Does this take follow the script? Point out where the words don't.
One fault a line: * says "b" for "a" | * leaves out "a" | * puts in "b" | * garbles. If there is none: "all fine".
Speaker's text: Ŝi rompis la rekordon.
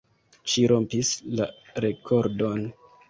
all fine